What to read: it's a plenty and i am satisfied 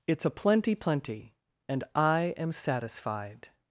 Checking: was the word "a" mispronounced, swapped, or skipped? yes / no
no